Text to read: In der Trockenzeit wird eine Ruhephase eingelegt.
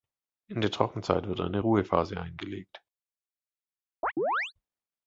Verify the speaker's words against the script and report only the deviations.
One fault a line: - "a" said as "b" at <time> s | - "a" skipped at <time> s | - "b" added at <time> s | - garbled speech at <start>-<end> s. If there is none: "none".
none